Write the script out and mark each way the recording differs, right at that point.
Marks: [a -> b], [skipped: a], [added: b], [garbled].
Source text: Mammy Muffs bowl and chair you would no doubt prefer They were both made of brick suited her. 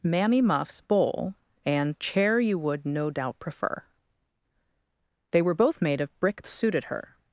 Mammy Muffs bowl and chair you would no doubt prefer They were both made of brick suited her.